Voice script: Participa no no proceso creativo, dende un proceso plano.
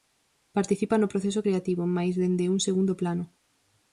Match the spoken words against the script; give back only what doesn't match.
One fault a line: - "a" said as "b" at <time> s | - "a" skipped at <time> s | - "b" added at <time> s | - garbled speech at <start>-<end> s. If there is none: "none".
- "no" skipped at 1.1 s
- "mais" added at 2.0 s
- "proceso" said as "segundo" at 2.7 s